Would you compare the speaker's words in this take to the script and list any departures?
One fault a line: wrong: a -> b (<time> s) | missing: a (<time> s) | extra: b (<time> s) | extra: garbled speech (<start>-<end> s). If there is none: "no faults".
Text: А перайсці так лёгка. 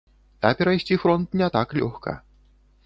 extra: фронт не (1.0 s)